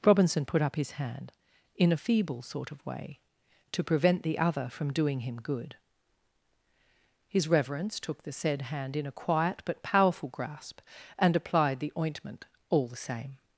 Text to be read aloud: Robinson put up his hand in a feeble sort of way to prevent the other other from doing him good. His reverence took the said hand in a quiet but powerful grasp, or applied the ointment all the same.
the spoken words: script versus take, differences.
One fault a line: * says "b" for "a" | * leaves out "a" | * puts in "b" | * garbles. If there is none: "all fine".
* leaves out "other"
* says "and" for "or"